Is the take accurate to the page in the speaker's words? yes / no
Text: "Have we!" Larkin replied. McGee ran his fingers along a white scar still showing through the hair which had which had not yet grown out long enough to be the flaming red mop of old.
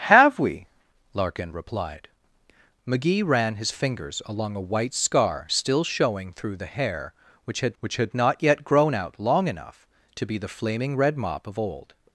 yes